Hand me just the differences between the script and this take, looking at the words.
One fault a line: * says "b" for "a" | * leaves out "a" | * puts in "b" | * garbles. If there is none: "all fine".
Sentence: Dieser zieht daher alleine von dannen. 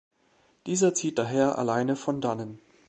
all fine